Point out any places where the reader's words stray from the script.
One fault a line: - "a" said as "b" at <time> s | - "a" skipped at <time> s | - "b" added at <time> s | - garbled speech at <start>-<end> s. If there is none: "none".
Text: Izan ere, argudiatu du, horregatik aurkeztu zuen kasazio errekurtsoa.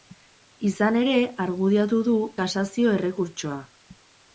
- "horregatik aurkeztu zuen" skipped at 2.2 s